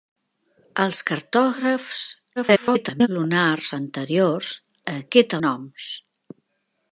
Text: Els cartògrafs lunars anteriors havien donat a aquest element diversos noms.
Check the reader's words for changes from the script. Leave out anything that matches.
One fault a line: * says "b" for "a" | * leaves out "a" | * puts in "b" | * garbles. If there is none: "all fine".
* garbles
* leaves out "havien donat"
* leaves out "element diversos"